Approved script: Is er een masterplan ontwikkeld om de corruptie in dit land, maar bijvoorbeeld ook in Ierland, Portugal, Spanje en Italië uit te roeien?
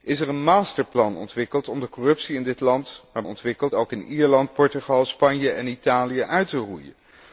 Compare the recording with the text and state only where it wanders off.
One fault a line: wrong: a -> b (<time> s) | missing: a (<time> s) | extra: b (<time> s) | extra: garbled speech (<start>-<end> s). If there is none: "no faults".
wrong: bijvoorbeeld -> ontwikkeld (3.3 s)